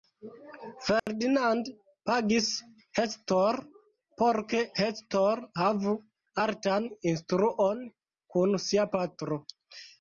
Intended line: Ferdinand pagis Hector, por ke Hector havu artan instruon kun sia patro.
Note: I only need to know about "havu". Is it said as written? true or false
true